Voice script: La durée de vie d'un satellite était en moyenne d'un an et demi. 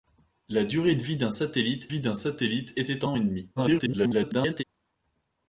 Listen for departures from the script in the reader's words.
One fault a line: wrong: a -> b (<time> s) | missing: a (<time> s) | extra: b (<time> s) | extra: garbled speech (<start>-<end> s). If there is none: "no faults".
extra: vie d'un satellite (1.9 s)
missing: moyenne d'un (3.1 s)
extra: garbled speech (3.6-4.6 s)